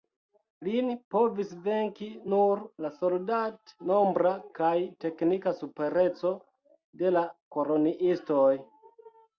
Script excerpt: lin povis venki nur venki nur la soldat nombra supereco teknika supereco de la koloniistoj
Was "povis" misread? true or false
false